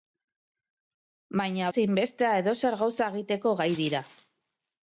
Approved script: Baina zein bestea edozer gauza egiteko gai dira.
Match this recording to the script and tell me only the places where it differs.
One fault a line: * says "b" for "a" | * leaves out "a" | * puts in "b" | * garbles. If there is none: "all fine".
all fine